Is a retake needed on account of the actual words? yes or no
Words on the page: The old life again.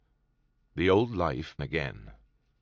no